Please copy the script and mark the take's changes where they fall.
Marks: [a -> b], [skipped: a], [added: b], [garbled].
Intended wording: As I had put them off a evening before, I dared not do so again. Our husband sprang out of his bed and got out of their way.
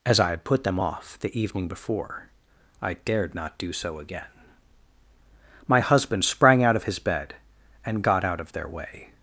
As I had put them off [a -> the] evening before, I dared not do so again. [Our -> My] husband sprang out of his bed and got out of their way.